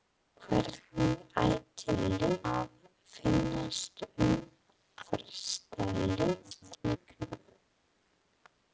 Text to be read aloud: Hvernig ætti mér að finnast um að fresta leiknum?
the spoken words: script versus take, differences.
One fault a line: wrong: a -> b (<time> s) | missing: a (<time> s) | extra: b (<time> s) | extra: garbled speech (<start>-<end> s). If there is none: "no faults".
wrong: mér -> leiknum (2.0 s)
missing: að (4.3 s)
extra: garbled speech (6.4-7.0 s)